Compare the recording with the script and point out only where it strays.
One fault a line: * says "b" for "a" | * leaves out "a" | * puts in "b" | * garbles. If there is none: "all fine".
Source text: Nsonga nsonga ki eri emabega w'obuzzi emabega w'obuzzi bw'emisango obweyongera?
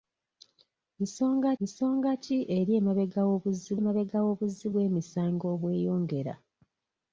all fine